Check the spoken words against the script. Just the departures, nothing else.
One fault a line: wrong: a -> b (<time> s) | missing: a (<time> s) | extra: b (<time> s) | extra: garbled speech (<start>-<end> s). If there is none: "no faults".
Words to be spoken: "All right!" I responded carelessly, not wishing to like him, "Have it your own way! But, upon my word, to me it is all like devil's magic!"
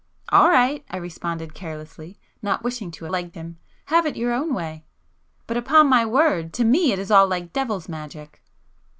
no faults